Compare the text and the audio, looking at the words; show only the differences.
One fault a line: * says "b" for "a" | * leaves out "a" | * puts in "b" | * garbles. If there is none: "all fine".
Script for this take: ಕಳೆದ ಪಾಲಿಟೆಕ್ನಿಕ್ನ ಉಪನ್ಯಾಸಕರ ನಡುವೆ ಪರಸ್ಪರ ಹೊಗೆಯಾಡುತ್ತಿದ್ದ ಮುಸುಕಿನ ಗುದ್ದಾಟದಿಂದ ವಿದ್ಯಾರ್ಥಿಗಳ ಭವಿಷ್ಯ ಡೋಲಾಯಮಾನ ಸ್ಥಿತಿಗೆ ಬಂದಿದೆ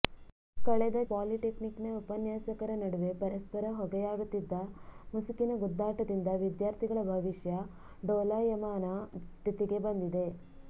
all fine